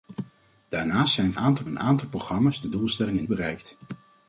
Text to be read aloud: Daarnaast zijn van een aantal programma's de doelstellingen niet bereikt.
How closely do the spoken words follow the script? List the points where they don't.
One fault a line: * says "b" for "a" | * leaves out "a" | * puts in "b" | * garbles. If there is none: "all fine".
* says "aantal" for "van"
* leaves out "niet"